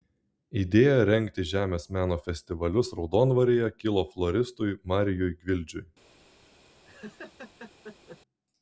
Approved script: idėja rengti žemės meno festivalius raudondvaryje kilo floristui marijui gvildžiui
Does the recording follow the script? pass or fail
pass